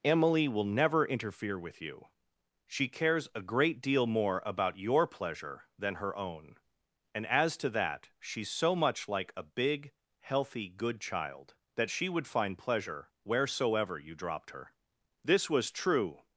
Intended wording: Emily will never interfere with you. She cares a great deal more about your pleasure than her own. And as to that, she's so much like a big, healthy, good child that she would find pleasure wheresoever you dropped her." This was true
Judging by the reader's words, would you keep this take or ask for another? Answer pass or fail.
pass